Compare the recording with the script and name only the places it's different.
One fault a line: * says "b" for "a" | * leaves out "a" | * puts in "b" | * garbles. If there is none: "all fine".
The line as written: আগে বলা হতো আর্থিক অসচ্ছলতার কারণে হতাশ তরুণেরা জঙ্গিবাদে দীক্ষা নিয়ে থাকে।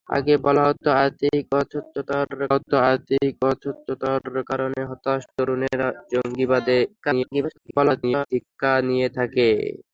* puts in "হতো আর্থিক অসচ্ছলতার"
* garbles